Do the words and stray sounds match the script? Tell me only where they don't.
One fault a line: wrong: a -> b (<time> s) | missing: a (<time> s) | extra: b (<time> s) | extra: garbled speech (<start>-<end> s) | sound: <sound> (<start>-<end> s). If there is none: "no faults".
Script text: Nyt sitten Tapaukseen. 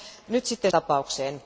no faults